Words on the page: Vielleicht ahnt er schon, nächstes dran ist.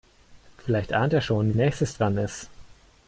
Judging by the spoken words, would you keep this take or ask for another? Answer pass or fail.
pass